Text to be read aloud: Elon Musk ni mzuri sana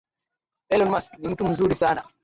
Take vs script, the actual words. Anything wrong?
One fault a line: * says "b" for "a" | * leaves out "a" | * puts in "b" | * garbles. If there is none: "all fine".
* puts in "mtu"